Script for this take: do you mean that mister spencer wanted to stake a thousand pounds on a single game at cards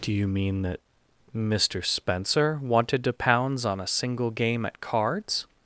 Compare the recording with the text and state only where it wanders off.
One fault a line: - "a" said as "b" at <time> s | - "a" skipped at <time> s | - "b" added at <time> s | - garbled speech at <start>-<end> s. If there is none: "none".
- "stake a thousand" skipped at 3.1 s